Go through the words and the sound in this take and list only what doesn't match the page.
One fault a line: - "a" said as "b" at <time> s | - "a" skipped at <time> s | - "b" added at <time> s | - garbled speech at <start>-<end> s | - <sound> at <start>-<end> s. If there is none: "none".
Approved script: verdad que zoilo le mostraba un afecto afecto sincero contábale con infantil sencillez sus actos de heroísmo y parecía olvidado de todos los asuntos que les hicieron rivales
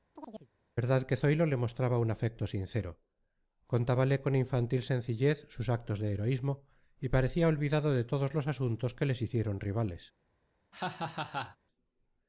- chirp at 0.2-0.5 s
- "afecto" skipped at 2.4 s
- laugh at 10.7-11.6 s